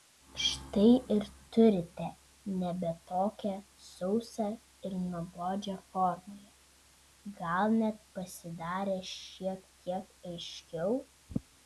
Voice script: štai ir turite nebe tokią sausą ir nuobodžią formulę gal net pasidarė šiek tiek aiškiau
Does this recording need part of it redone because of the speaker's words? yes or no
no